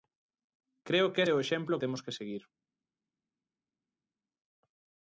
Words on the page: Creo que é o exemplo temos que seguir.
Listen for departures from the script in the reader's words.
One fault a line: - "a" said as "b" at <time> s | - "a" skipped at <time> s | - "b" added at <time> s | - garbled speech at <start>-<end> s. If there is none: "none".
none